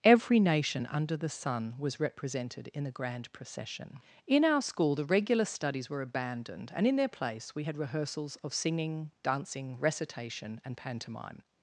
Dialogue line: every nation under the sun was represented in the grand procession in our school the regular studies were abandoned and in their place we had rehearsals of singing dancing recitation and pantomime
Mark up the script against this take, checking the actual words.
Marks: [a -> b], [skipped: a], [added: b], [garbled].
every nation under the sun was represented in the grand procession in our school the regular studies were abandoned and in their place we had rehearsals of singing dancing recitation and pantomime